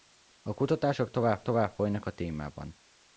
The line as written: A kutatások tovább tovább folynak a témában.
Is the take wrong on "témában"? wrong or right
right